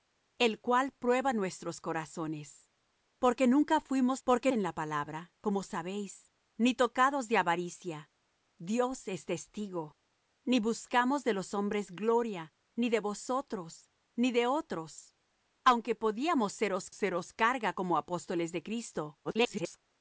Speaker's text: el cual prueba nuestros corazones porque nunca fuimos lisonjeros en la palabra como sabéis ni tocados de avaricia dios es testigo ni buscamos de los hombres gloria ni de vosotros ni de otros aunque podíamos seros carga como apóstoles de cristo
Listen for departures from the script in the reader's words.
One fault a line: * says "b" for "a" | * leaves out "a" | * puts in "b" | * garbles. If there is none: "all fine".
* says "porque" for "lisonjeros"
* puts in "seros"
* garbles